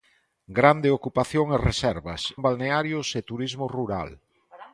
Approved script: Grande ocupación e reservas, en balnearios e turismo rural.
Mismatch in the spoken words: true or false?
false